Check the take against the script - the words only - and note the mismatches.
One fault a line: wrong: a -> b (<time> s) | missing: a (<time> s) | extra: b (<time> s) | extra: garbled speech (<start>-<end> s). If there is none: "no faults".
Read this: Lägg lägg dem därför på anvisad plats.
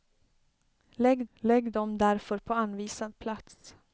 no faults